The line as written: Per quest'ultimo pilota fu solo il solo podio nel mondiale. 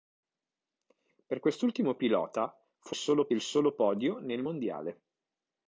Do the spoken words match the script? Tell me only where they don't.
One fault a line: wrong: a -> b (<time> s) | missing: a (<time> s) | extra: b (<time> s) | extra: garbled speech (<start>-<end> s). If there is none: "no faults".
no faults